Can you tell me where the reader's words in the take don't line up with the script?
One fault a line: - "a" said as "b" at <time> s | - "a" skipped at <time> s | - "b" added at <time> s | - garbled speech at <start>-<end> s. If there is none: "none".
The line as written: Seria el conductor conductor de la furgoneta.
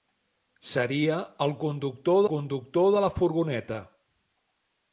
none